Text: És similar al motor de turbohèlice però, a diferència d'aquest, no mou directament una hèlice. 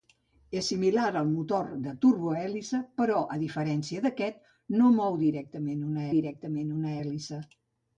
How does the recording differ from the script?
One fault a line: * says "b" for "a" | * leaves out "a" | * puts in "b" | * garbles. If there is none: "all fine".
* puts in "directament una"